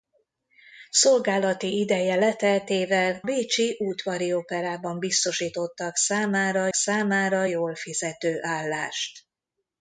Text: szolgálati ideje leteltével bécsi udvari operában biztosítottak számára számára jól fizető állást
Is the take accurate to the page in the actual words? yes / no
yes